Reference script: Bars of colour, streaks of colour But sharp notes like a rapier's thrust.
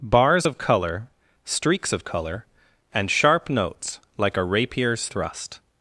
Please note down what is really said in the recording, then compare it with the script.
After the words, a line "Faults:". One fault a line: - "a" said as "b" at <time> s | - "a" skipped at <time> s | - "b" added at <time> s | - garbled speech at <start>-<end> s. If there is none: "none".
Bars of colour, streaks of colour And sharp notes like a rapier's thrust.
Faults:
- "But" said as "And" at 2.9 s